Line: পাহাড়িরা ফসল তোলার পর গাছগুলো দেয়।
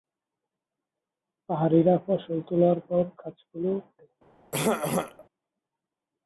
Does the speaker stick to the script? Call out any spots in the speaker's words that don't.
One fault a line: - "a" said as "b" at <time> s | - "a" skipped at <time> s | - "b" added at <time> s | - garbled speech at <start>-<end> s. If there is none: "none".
none